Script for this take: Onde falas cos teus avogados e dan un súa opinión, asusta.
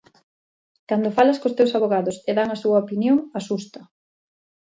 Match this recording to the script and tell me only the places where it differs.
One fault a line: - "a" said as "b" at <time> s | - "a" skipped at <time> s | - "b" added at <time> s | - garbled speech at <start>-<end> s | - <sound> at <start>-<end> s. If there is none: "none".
- "Onde" said as "Cando" at 0.9 s
- "un" said as "a" at 2.5 s